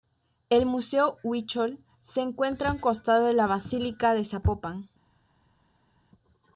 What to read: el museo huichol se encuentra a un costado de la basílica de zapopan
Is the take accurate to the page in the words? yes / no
yes